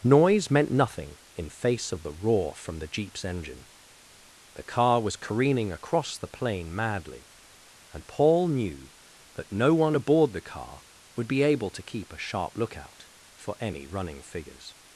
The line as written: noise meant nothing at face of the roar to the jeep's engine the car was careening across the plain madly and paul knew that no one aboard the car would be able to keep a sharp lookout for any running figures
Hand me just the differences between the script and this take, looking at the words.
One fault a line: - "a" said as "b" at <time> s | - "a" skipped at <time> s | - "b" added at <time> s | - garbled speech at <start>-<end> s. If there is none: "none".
- "at" said as "in" at 1.4 s
- "to" said as "from" at 2.5 s